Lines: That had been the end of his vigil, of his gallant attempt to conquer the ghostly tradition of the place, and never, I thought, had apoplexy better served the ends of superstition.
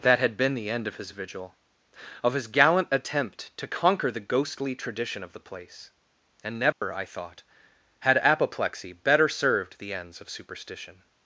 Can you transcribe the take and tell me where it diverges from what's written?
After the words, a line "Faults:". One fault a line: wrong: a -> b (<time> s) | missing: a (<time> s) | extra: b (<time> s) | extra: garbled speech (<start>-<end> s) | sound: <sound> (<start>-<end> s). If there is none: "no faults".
That had been the end of his vigil, of his gallant attempt to conquer the ghostly tradition of the place, and never, I thought, had apoplexy better served the ends of superstition.
Faults:
sound: dropout (6.7-6.8 s)